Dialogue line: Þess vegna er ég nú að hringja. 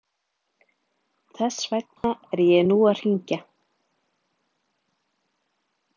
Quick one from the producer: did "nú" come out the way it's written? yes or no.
yes